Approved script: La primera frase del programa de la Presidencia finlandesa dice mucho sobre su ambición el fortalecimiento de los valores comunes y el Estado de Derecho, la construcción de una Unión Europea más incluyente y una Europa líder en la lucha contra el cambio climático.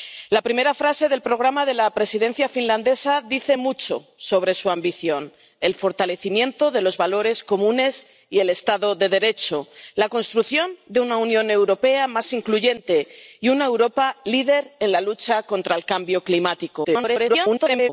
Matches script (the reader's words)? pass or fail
fail